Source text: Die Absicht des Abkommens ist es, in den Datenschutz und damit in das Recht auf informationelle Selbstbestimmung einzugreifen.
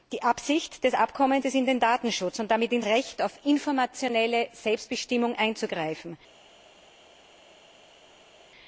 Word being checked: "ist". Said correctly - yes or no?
no